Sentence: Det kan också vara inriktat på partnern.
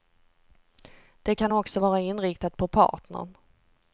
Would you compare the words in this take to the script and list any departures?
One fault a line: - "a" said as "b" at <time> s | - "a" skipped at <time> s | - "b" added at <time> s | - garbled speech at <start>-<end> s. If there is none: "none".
none